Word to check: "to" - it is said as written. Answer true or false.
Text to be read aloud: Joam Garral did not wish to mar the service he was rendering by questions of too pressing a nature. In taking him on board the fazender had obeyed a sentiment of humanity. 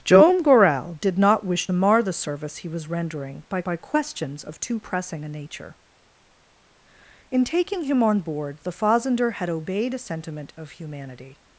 false